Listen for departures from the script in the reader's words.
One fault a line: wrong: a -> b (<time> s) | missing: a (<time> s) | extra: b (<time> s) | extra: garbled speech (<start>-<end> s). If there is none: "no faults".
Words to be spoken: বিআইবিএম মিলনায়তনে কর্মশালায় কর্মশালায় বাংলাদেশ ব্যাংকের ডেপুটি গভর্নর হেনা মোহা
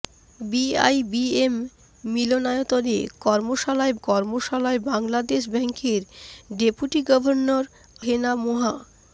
no faults